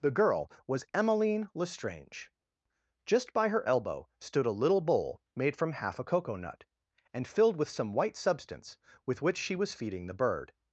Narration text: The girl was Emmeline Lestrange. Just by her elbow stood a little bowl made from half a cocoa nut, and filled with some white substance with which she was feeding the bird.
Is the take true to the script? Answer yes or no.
yes